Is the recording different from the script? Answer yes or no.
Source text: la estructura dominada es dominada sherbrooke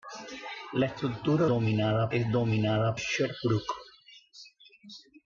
no